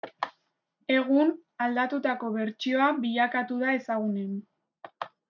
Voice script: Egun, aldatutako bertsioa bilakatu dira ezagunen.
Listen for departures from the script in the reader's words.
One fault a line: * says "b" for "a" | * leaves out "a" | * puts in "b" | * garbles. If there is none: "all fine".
* says "da" for "dira"